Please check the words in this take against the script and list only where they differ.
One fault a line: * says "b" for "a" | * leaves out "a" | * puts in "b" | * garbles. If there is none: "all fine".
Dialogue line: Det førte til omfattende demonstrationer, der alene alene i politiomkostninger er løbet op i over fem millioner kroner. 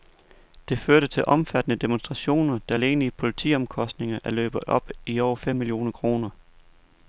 * leaves out "alene"